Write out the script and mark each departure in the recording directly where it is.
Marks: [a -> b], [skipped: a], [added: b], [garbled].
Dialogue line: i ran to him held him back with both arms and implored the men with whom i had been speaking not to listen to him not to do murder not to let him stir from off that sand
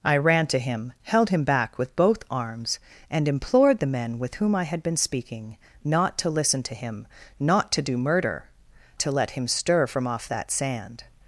i ran to him held him back with both arms and implored the men with whom i had been speaking not to listen to him not to do murder [skipped: not] to let him stir from off that sand